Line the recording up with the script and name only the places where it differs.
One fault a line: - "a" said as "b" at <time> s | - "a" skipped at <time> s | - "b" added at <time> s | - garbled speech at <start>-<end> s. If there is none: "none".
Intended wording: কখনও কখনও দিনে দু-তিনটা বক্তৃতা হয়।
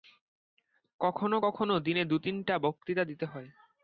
- "দিতে" added at 3.0 s